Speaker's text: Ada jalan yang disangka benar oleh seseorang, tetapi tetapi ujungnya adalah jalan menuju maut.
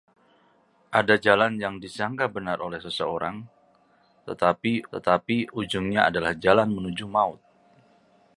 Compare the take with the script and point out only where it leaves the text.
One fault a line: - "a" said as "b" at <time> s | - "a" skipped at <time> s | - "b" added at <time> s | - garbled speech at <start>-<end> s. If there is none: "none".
none